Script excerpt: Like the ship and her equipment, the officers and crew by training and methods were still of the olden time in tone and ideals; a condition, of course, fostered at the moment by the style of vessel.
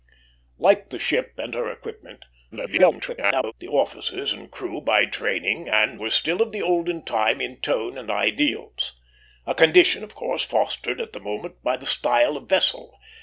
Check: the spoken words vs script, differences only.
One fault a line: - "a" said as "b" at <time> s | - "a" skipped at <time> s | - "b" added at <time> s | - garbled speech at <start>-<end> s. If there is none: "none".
- garbled speech at 2.5-3.5 s
- "methods" skipped at 6.0 s